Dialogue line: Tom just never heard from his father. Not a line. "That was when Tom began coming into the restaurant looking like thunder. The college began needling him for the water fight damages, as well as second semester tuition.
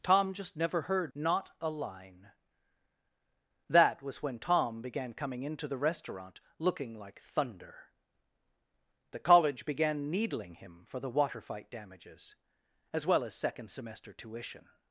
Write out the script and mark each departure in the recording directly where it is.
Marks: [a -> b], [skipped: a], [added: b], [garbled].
Tom just never heard [skipped: from his father.] Not a line. "That was when Tom began coming into the restaurant looking like thunder. The college began needling him for the water fight damages, as well as second semester tuition.